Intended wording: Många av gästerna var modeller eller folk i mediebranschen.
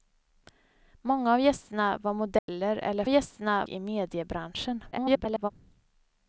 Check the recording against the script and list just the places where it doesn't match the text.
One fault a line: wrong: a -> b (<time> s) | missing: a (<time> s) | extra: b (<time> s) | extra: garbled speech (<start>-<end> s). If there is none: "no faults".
wrong: folk -> gästerna (3.1 s)
extra: garbled speech (4.9-5.5 s)